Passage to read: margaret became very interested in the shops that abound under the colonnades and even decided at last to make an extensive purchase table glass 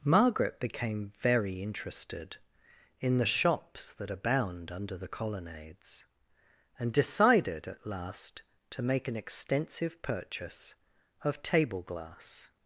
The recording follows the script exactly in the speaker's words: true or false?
false